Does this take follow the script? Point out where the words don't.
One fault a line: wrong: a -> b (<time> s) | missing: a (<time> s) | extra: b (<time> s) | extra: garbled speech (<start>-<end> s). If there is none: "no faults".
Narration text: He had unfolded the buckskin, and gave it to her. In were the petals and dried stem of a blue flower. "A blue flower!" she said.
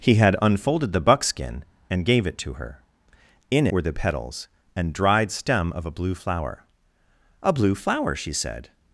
no faults